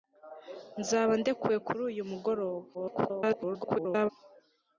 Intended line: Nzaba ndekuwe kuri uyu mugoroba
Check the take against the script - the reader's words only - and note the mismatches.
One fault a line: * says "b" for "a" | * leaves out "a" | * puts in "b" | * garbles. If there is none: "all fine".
* garbles